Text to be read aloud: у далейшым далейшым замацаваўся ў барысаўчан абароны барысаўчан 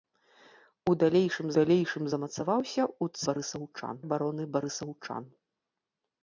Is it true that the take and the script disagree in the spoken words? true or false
false